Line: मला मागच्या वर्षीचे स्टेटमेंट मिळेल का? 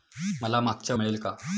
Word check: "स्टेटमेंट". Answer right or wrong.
wrong